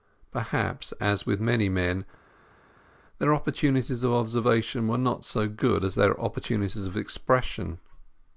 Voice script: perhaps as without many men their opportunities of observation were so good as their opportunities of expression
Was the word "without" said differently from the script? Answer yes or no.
yes